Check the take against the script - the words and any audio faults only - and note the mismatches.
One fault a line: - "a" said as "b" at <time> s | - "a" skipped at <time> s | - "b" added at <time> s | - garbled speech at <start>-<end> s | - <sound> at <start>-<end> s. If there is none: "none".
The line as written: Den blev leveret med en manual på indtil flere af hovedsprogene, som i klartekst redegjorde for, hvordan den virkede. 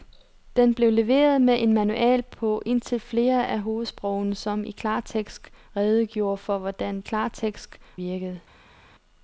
- "den" said as "klartekst" at 7.0 s